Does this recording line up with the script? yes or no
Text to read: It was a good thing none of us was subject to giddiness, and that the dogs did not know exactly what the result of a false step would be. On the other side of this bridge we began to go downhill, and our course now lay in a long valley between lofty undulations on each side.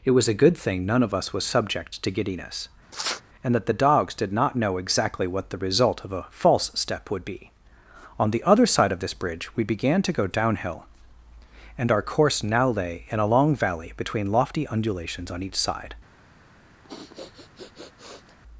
yes